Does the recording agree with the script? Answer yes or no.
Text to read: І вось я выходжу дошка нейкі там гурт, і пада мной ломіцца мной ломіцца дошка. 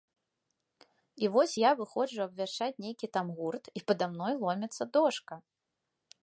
no